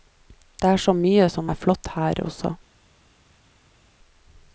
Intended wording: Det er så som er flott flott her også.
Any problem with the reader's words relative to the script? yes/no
yes